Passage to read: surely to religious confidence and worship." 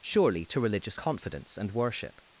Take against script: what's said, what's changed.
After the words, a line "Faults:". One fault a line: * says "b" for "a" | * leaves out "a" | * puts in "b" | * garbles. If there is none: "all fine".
surely to religious confidence and worship."
Faults:
all fine